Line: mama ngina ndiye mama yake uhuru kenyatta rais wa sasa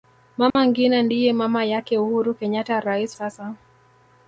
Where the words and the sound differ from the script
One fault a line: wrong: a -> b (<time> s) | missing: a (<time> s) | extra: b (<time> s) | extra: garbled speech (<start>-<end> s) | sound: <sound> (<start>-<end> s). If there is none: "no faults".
sound: dropout (0.5-0.6 s)
missing: wa (3.2 s)